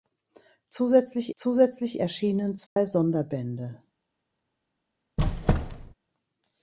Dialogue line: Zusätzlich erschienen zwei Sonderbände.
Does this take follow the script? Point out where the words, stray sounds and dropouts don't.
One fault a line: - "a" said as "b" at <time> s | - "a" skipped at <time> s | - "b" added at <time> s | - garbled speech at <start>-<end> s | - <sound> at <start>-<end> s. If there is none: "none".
- "zusätzlich" added at 1.3 s
- dropout at 2.7-2.8 s
- squeak at 5.2-5.9 s